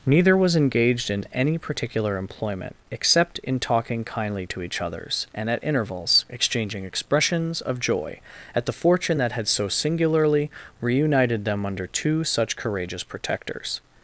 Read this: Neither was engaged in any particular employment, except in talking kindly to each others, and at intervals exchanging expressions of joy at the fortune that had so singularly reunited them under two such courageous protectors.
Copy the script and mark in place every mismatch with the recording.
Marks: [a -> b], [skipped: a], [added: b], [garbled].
Neither was engaged in any particular employment, except in talking kindly to each others, and at intervals exchanging expressions of joy at the fortune that had so singularly reunited them under two such courageous protectors.